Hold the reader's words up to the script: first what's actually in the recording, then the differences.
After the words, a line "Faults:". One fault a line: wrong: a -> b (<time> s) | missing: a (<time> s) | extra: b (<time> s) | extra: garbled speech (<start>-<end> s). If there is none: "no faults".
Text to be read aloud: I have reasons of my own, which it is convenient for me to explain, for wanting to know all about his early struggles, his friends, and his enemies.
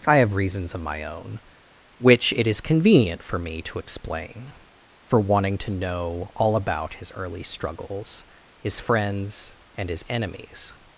I have reasons of my own, which it is convenient for me to explain, for wanting to know all about his early struggles, his friends, and his enemies.
Faults:
no faults